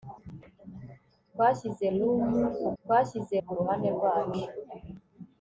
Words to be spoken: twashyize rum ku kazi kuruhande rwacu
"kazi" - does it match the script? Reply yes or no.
no